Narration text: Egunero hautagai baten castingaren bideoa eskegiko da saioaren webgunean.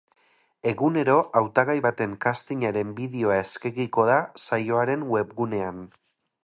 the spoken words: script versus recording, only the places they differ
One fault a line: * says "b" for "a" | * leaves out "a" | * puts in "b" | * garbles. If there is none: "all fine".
all fine